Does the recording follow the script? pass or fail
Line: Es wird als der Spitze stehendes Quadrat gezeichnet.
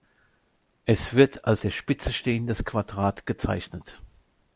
pass